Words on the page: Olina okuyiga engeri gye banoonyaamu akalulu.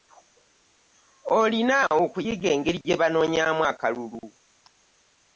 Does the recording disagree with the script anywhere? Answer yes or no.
no